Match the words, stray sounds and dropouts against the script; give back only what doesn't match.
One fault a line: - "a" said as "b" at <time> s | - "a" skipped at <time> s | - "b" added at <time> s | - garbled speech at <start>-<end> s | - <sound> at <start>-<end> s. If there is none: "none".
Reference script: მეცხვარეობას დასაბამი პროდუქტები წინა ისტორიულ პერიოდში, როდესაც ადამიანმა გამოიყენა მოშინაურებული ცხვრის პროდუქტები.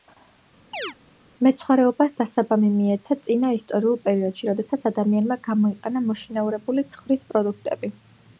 - chirp at 0.7-0.9 s
- "პროდუქტები" said as "მიეცა" at 2.7 s